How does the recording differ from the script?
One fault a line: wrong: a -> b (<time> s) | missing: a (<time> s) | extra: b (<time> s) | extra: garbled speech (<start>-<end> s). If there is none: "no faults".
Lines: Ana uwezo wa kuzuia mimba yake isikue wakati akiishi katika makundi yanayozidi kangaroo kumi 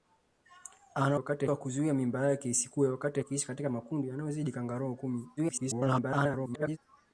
wrong: uwezo -> wakati (1.2 s)
extra: garbled speech (5.4-6.8 s)